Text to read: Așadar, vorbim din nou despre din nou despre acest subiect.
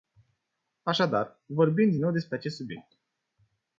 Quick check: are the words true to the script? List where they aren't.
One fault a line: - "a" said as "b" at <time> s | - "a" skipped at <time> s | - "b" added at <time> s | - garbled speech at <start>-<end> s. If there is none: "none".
- "din nou despre" skipped at 2.4 s